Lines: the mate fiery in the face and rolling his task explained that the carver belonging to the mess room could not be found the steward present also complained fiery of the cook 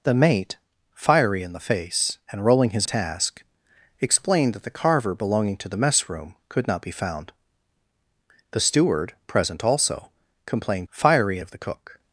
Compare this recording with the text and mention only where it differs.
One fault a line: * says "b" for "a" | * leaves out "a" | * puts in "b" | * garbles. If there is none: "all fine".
all fine